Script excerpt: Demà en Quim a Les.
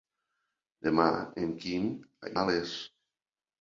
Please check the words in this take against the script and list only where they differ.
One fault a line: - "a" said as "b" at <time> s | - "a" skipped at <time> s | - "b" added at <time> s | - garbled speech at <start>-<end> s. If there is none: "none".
none